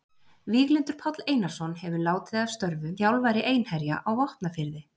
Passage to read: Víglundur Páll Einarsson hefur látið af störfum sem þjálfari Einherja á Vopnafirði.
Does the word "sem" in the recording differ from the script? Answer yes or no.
yes